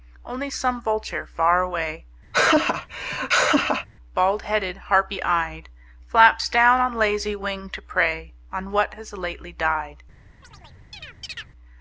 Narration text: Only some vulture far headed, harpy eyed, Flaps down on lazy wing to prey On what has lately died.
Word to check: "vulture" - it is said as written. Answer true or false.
true